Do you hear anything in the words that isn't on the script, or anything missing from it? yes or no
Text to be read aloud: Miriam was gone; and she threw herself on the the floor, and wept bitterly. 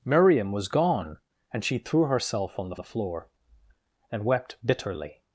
no